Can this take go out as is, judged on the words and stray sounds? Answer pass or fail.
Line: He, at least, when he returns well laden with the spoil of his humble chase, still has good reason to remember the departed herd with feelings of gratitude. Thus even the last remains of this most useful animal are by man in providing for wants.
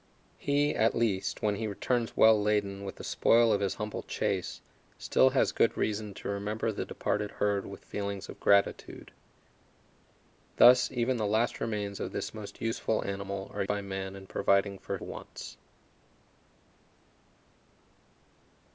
pass